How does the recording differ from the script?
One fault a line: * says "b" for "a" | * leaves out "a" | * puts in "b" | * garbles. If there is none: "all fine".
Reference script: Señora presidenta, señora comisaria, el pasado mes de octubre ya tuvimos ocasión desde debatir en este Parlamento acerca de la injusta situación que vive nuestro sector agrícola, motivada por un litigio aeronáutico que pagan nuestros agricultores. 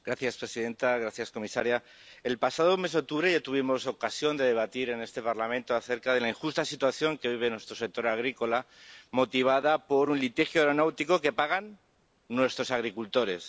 * says "de" for "desde"